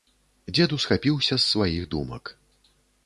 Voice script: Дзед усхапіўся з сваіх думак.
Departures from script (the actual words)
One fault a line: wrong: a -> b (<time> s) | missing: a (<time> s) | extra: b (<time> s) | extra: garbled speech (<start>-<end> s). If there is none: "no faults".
no faults